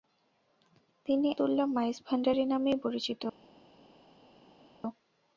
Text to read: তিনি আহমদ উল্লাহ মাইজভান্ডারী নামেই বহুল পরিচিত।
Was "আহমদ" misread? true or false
true